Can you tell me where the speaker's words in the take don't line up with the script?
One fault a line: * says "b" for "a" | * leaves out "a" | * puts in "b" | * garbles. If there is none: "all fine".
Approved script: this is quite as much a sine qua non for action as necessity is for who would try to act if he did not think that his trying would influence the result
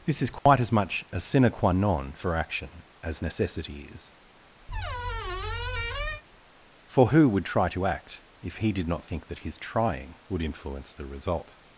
all fine